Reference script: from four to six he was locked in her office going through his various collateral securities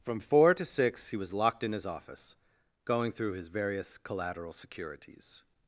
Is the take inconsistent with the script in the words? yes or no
yes